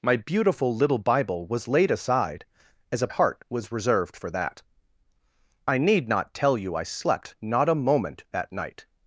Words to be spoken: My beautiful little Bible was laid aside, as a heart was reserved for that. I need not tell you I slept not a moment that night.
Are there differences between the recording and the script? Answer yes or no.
no